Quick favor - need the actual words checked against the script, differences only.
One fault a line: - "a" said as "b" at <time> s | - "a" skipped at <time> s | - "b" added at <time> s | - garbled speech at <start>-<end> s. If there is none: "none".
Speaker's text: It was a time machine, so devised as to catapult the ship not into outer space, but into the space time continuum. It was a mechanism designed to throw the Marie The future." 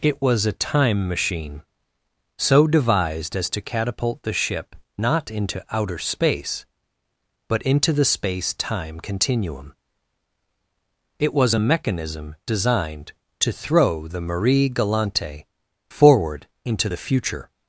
- "Galante forward into" added at 14.7 s